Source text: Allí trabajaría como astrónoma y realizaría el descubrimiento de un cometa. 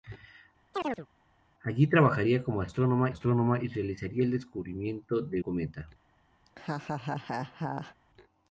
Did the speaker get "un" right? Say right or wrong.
wrong